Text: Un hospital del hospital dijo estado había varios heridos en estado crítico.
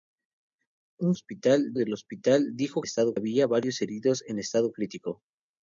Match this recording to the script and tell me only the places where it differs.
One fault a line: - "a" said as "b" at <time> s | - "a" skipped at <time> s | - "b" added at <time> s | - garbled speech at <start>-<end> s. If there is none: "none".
none